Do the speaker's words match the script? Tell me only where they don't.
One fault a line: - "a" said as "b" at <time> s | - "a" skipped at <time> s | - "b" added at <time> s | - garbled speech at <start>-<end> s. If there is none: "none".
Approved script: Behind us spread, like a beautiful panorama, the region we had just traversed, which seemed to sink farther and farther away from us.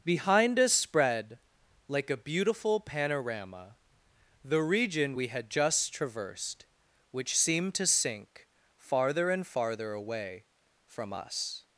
none